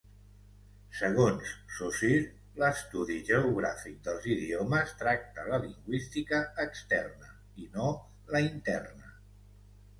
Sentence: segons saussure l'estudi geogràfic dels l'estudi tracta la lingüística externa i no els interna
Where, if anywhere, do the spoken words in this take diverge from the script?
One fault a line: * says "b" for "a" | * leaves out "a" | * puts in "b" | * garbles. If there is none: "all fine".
* says "idiomes" for "l'estudi"
* says "la" for "els"